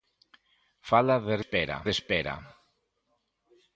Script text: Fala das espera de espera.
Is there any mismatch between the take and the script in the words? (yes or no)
no